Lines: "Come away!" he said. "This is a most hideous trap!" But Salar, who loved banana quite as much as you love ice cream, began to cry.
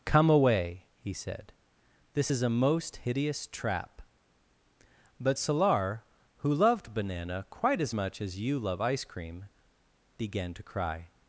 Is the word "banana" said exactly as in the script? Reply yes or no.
yes